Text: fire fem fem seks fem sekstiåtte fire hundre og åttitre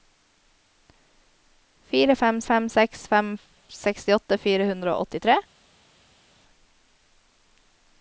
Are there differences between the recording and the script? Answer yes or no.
no